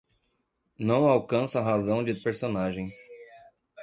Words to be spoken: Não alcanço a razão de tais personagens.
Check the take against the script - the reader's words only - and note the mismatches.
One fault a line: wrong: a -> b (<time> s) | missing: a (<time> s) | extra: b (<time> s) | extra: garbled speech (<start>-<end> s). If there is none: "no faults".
missing: tais (2.2 s)